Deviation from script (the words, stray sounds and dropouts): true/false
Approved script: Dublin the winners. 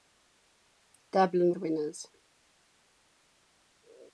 false